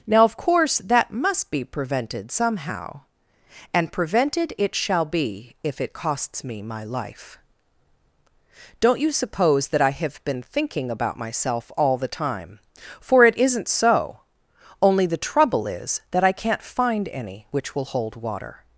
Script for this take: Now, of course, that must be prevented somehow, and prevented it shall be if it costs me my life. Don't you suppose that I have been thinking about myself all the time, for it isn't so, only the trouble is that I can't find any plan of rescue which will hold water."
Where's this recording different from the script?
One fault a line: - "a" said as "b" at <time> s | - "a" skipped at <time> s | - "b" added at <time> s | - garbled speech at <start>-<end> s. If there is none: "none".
- "plan of rescue" skipped at 17.5 s